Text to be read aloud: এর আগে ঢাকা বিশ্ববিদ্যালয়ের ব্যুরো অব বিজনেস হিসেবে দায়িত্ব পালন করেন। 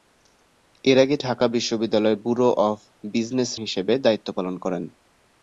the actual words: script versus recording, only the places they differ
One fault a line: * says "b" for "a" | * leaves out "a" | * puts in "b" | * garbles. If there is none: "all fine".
all fine